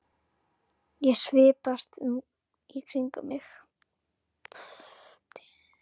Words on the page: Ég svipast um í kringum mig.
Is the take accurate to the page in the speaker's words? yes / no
yes